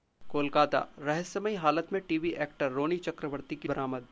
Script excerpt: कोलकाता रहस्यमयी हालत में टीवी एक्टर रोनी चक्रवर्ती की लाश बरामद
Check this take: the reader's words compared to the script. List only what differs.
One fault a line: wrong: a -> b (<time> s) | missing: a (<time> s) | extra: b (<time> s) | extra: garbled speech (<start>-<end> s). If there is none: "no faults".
missing: लाश (3.7 s)